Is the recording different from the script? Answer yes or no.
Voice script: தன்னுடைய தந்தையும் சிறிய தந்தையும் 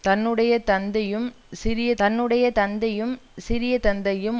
yes